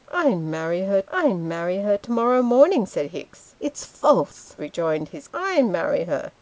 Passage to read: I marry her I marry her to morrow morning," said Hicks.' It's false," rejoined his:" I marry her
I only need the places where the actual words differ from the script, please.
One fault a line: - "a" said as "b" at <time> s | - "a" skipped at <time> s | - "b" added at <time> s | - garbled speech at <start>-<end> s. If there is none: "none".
none